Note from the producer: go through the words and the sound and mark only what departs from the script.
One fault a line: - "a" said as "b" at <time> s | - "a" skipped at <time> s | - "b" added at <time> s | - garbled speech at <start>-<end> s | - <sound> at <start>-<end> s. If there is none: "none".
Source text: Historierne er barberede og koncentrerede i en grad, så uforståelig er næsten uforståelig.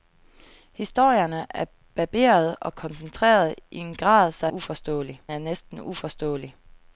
none